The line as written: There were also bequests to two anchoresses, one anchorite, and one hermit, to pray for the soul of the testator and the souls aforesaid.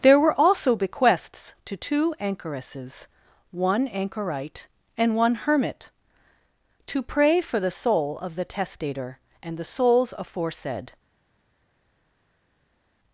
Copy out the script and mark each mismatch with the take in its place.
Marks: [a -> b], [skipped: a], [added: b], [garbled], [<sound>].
There were also bequests to two anchoresses, one anchorite, and one hermit, to pray for the soul of the testator and the souls aforesaid.